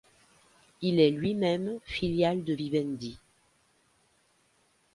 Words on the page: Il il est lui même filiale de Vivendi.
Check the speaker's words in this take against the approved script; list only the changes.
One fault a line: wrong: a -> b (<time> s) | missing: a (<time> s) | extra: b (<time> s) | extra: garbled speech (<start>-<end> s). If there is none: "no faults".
missing: il (1.0 s)